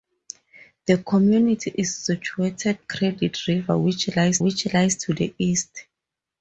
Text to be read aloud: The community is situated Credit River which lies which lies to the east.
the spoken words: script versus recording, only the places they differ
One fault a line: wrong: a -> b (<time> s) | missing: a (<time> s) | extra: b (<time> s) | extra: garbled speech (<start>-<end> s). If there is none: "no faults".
no faults